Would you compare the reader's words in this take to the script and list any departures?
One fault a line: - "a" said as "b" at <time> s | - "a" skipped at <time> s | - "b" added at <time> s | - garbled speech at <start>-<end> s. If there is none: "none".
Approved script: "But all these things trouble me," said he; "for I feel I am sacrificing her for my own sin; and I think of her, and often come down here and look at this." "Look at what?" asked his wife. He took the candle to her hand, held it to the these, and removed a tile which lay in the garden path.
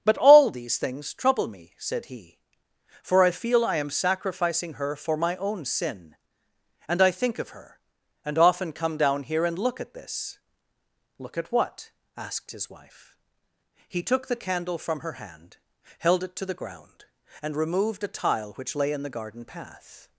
- "to" said as "from" at 14.8 s
- "these" said as "ground" at 16.5 s